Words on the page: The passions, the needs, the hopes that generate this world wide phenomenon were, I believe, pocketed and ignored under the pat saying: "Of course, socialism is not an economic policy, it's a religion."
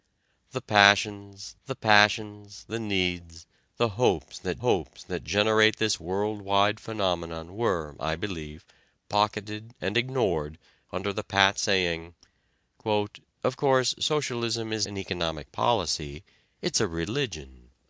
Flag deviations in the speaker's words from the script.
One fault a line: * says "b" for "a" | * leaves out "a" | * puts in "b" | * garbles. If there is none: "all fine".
* puts in "passions the"
* puts in "hopes that"
* leaves out "not"